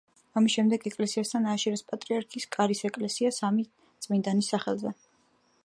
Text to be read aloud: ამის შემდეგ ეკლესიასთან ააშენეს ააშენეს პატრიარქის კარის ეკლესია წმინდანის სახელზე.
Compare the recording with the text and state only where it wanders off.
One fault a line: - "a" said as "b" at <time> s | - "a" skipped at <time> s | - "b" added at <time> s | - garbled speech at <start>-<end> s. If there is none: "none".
- "ააშენეს" skipped at 1.9 s
- "სამი" added at 3.4 s